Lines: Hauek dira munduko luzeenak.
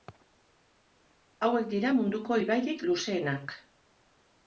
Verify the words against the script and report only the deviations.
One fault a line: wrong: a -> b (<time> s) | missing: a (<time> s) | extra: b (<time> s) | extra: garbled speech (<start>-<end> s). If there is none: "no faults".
extra: ibairik (2.4 s)